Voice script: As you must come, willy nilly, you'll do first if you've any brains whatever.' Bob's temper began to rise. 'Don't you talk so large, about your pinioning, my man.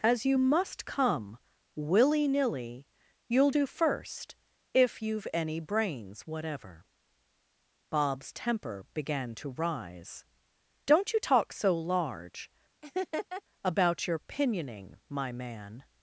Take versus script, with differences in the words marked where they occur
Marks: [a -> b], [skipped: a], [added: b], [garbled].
As you must come, willy nilly, you'll do first if you've any brains whatever.' Bob's temper began to rise. 'Don't you talk so large, about your pinioning, my man.